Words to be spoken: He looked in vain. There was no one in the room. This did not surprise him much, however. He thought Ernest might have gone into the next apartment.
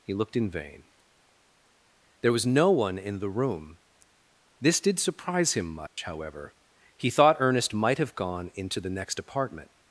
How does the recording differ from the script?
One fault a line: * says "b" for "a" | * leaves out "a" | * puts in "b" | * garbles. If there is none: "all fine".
* leaves out "not"